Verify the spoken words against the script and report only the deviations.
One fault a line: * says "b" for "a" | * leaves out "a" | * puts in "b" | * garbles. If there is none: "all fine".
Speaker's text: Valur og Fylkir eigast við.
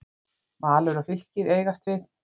all fine